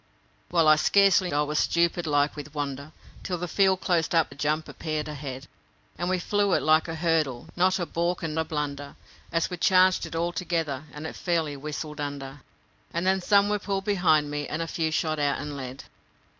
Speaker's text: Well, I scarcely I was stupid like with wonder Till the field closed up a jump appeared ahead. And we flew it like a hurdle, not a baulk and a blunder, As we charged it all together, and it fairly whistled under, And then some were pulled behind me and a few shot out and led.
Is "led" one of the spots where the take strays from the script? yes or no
no